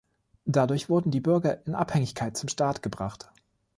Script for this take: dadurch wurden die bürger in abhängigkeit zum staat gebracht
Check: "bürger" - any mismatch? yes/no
no